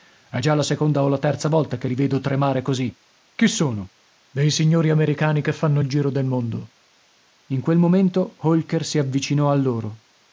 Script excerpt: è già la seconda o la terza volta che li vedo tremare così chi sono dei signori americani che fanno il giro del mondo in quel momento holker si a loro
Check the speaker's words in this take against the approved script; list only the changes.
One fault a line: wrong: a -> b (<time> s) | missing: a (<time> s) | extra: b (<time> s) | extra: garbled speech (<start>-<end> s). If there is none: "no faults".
extra: avvicinò (9.0 s)